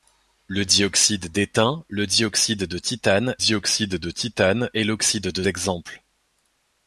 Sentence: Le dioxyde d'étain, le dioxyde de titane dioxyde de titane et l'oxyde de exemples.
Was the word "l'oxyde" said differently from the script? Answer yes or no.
no